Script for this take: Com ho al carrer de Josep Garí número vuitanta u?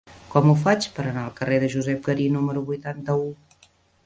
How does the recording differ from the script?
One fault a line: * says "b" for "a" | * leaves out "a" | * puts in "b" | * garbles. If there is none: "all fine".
* puts in "faig per anar"